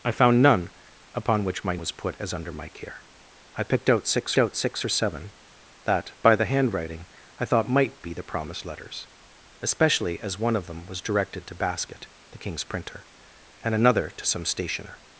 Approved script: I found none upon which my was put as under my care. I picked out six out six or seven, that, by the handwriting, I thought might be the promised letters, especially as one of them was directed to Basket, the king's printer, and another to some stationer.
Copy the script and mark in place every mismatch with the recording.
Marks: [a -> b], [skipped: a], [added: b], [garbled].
I found none upon which my was put as under my care. I picked out six out six or seven, that, by the handwriting, I thought might be the promised letters, especially as one of them was directed to Basket, the king's printer, and another to some stationer.